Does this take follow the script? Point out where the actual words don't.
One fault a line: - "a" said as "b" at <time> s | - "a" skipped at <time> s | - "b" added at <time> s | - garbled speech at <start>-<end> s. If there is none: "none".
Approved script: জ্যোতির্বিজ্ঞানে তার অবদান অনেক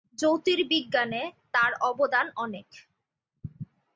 none